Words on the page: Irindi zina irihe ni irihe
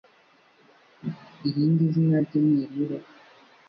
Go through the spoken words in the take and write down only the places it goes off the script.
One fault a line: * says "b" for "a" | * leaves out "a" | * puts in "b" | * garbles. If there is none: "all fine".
* says "rye" for "irihe"